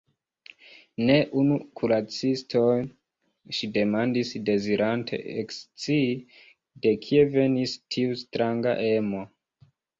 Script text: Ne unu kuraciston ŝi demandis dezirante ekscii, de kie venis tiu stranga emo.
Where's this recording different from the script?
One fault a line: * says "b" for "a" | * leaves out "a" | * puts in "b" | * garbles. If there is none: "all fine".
all fine